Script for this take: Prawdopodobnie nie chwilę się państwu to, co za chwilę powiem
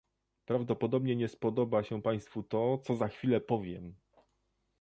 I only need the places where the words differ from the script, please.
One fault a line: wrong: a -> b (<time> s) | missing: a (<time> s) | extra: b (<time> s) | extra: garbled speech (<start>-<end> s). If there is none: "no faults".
wrong: chwilę -> spodoba (1.3 s)